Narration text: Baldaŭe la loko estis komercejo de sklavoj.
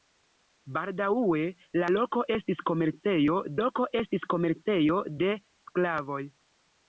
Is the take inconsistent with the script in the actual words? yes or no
yes